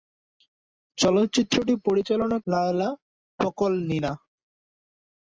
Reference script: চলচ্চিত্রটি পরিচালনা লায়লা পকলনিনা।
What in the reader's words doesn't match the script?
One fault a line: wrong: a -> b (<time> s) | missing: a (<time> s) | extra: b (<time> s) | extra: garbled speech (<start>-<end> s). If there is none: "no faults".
no faults